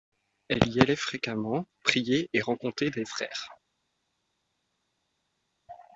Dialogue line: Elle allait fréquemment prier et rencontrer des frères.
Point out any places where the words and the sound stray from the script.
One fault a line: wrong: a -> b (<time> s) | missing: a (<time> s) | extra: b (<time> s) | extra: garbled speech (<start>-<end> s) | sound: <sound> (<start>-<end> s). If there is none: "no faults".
extra: y (0.7 s)